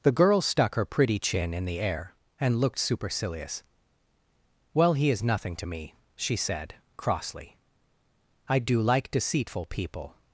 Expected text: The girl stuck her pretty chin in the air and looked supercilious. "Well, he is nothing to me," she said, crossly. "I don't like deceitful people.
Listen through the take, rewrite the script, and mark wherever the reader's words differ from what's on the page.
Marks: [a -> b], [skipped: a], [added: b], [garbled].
The girl stuck her pretty chin in the air and looked supercilious. "Well, he is nothing to me," she said, crossly. "I [don't -> do] like deceitful people.